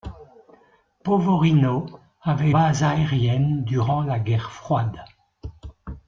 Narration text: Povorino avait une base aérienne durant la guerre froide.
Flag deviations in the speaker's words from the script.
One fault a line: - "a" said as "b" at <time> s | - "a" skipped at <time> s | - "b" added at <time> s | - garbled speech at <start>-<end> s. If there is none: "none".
- "une" skipped at 2.5 s